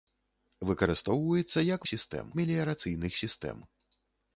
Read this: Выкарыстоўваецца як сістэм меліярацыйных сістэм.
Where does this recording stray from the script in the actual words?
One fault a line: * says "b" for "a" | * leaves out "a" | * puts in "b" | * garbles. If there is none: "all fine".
all fine